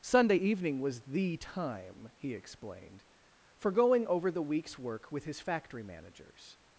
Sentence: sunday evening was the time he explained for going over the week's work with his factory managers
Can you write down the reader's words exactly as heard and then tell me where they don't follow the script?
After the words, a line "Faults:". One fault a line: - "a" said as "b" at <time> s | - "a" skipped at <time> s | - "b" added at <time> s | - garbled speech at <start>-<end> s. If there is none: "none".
sunday evening was the time he explained for going over the week's work with his factory managers
Faults:
none